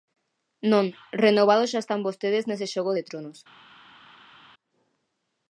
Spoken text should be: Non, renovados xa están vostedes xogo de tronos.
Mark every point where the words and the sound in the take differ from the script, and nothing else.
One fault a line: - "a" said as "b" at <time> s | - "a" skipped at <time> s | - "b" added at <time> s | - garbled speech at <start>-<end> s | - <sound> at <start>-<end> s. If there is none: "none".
- "nese" added at 2.5 s